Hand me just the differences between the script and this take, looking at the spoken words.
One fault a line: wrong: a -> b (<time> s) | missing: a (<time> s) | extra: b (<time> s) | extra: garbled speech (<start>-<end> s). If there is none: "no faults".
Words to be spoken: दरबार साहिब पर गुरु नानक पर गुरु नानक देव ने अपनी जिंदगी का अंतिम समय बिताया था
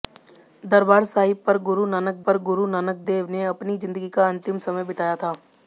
no faults